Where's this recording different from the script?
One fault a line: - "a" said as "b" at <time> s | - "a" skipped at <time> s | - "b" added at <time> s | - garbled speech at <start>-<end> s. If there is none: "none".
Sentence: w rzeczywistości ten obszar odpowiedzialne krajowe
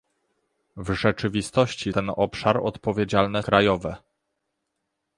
none